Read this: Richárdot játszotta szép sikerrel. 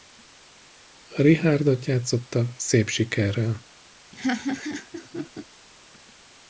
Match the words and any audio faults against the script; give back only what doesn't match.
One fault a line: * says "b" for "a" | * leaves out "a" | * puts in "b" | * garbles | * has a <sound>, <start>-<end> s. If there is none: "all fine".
* has a laugh, 4.1-5.5 s